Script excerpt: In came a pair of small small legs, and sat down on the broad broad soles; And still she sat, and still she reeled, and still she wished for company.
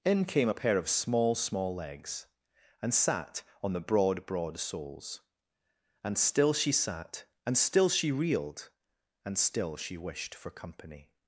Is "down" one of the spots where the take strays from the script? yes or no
yes